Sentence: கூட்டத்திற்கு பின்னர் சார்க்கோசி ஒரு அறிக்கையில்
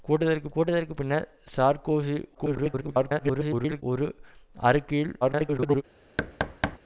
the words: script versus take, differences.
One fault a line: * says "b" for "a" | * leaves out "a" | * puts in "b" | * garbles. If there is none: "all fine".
* puts in "கூட்டத்திற்கு"
* garbles
* garbles